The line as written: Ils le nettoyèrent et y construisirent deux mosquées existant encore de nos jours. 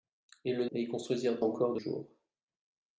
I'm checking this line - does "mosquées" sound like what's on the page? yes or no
no